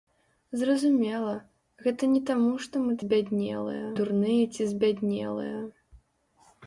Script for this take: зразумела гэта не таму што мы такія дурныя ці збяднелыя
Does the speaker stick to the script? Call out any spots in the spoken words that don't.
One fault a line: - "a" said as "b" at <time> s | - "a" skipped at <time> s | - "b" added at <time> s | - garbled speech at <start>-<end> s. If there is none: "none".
- "такія" said as "збяднелыя" at 3.0 s